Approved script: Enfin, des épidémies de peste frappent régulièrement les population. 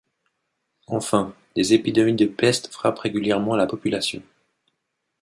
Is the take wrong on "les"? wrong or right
wrong